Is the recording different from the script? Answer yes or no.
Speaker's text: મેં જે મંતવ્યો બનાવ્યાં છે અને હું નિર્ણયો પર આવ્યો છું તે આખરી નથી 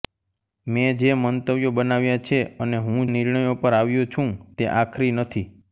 no